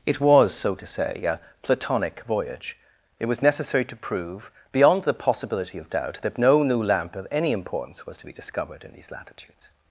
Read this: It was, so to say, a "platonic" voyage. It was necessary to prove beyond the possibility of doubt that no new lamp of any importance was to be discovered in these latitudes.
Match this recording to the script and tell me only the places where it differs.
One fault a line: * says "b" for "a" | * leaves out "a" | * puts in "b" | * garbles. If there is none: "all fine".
all fine